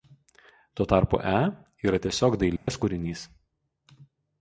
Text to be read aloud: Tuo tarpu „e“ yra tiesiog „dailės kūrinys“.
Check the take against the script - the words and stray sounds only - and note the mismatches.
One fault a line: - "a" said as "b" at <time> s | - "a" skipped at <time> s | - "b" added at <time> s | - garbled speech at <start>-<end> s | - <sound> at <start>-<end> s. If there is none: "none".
- dropout at 2.6-2.7 s